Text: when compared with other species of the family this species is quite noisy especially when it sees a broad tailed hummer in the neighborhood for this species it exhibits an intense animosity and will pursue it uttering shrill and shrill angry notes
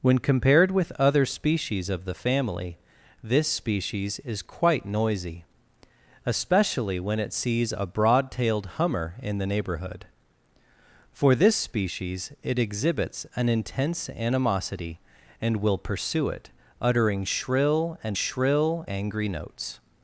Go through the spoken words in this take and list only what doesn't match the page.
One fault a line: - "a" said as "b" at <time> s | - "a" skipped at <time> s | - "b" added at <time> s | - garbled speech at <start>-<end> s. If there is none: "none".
none